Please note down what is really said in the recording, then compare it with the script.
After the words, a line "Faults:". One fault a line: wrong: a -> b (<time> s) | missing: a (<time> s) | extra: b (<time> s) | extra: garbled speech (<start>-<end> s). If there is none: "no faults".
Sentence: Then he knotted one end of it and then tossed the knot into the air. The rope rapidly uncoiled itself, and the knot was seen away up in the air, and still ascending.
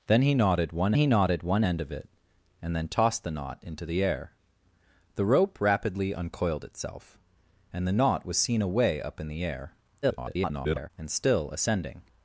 Then he knotted one he knotted one end of it and then tossed the knot into the air. The rope rapidly uncoiled itself, and the knot was seen away up in the air, [garbled] and still ascending.
Faults:
extra: he knotted one (0.9 s)
extra: garbled speech (10.0-10.9 s)